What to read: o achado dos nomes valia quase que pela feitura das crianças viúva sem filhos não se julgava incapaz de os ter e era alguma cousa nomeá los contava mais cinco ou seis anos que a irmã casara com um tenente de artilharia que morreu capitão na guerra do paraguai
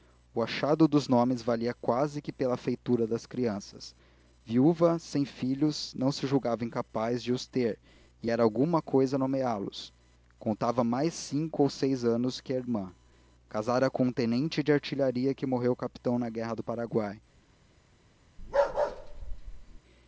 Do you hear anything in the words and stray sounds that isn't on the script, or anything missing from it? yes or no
yes